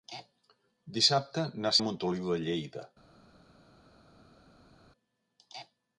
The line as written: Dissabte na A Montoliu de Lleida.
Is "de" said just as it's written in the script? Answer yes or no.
yes